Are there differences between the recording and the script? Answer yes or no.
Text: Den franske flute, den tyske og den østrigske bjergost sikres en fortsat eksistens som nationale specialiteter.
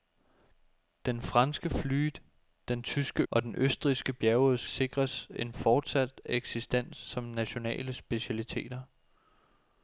no